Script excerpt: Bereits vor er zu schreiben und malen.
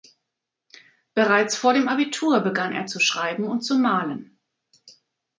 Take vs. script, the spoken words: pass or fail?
fail